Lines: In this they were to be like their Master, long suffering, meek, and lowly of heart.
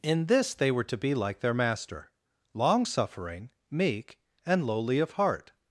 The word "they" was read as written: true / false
true